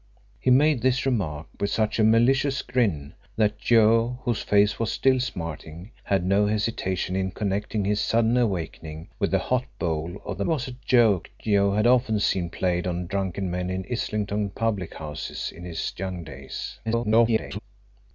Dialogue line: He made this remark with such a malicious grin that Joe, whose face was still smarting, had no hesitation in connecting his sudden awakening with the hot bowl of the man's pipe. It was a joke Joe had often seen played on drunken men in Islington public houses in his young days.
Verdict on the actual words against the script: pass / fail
fail